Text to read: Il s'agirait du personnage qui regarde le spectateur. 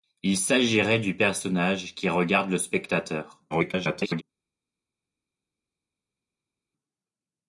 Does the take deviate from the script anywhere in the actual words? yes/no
yes